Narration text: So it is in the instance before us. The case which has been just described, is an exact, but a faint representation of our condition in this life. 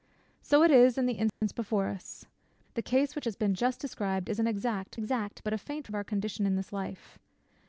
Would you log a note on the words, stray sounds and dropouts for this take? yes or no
yes